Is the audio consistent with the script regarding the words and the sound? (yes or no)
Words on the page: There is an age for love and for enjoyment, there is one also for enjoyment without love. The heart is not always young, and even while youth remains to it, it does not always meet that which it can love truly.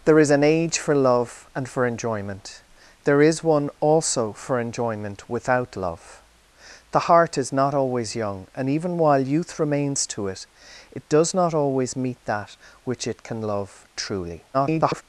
no